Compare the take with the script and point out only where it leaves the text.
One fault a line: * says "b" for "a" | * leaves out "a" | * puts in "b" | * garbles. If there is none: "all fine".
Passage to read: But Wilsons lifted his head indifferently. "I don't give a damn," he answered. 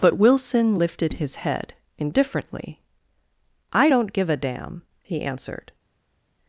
* says "Wilson" for "Wilsons"